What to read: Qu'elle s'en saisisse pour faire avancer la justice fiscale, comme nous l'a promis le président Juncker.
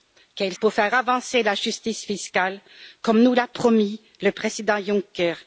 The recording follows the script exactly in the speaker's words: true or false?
false